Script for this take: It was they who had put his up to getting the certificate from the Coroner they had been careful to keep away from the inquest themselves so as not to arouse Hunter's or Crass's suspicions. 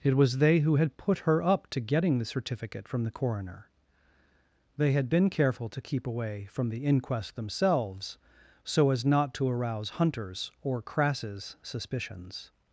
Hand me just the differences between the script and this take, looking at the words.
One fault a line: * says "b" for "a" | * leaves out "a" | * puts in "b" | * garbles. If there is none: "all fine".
* says "her" for "his"